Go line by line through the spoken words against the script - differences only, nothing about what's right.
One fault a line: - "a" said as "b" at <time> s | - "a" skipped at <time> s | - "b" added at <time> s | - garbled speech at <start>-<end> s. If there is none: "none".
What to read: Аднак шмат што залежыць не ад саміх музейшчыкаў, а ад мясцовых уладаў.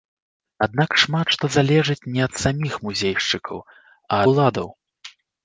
- "ад мясцовых" skipped at 4.2 s